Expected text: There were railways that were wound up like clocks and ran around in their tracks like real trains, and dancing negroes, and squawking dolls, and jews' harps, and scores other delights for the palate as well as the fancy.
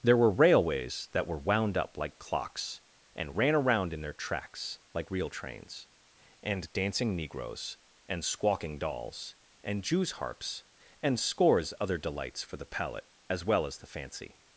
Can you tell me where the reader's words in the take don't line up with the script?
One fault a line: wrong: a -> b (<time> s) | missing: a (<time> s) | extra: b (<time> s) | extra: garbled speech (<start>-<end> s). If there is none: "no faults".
no faults